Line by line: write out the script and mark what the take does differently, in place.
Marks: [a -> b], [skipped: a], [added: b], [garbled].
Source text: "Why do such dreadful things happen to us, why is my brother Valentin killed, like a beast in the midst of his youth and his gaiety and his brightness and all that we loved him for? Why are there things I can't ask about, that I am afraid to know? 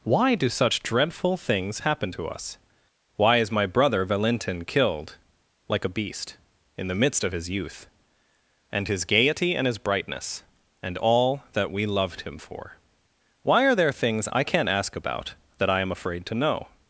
"Why do such dreadful things happen to us, why is my brother Valentin killed, like a beast in the midst of his youth and his gaiety and his brightness and all that we loved him for? Why are there things I can't ask about, that I am afraid to know?